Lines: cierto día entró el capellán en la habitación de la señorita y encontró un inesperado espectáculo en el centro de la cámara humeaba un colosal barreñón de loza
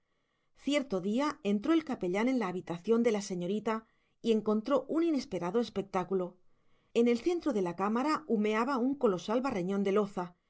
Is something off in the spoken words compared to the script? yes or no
no